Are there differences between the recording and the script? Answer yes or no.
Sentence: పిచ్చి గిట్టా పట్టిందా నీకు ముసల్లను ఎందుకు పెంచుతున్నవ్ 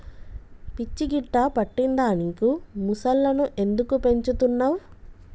no